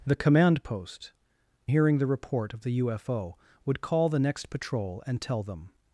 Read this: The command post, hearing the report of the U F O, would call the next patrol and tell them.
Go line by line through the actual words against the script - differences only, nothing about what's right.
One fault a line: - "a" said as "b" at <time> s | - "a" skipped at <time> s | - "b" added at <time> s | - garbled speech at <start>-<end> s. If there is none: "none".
none